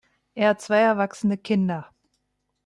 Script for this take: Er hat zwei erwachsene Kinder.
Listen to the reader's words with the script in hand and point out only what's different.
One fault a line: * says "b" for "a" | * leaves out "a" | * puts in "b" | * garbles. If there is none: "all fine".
all fine